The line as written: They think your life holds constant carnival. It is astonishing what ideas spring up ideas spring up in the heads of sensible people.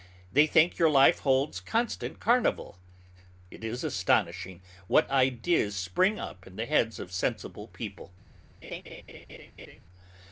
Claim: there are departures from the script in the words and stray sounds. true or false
true